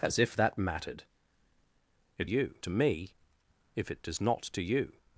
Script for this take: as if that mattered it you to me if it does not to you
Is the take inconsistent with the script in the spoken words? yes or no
no